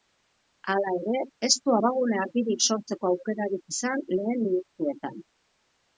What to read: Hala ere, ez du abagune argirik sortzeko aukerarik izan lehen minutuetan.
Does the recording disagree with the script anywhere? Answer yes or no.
no